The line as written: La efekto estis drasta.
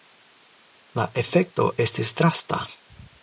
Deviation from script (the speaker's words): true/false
false